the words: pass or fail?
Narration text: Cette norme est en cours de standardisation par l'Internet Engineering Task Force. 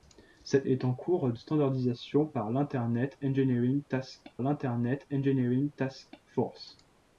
fail